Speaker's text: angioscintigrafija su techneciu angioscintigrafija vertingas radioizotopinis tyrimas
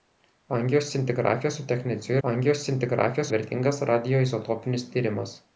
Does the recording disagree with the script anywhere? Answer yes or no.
no